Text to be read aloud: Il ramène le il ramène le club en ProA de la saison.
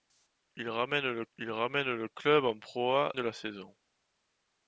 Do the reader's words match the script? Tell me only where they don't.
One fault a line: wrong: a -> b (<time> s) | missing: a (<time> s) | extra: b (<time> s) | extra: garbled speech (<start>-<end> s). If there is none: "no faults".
no faults